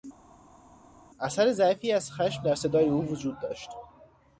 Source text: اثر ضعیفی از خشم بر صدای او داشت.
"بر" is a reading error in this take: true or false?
true